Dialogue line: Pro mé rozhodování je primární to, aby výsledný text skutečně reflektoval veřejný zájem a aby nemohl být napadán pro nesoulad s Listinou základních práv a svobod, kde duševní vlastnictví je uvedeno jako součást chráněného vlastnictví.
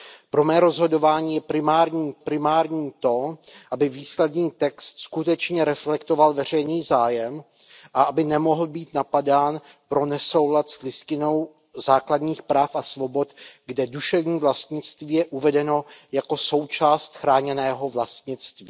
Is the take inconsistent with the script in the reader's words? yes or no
yes